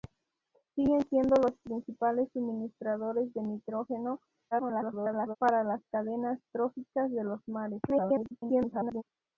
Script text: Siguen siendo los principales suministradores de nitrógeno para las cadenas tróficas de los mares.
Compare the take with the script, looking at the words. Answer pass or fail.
fail